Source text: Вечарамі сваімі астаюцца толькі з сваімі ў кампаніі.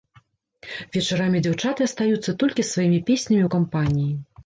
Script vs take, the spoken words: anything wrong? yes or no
yes